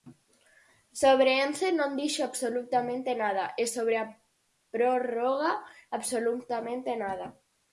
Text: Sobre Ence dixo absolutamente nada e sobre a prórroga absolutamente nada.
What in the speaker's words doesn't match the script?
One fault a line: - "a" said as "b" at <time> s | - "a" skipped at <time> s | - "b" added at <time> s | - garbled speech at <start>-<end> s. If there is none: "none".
- "non" added at 1.8 s